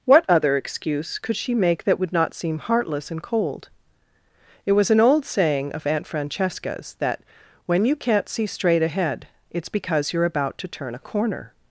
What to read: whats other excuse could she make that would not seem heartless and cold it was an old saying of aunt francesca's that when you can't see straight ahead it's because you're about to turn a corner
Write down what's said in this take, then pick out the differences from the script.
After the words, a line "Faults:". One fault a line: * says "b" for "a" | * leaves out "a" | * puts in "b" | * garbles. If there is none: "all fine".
what other excuse could she make that would not seem heartless and cold it was an old saying of aunt francesca's that when you can't see straight ahead it's because you're about to turn a corner
Faults:
* says "what" for "whats"